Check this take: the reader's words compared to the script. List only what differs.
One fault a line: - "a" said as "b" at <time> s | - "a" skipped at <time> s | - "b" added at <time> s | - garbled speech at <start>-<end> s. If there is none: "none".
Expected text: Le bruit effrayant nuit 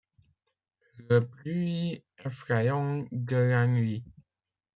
- "de la" added at 3.1 s